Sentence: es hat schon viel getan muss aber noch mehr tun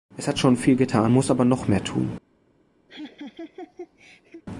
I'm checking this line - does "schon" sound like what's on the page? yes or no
yes